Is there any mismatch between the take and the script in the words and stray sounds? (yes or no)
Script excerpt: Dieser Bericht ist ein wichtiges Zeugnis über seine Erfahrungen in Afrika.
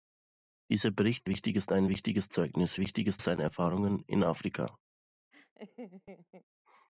yes